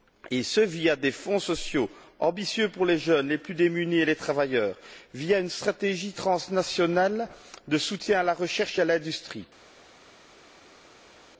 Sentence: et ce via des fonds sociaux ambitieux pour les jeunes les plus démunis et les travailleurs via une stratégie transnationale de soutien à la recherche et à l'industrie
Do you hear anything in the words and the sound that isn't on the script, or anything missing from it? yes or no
no